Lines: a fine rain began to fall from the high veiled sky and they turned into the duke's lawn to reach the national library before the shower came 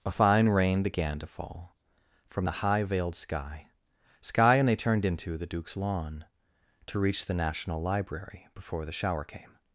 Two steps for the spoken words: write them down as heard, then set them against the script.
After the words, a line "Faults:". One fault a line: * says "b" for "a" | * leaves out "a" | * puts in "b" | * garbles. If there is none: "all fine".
a fine rain began to fall from the high veiled sky sky and they turned into the duke's lawn to reach the national library before the shower came
Faults:
* puts in "sky"